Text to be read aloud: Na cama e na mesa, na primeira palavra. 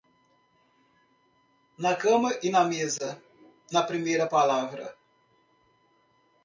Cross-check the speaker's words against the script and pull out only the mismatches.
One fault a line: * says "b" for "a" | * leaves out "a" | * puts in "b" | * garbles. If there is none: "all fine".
all fine